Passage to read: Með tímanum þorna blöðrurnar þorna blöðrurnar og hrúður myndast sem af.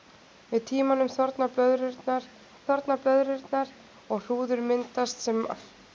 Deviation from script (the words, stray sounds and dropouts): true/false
false